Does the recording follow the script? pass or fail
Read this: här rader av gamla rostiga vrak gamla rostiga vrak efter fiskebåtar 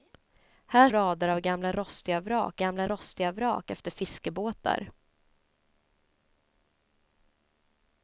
pass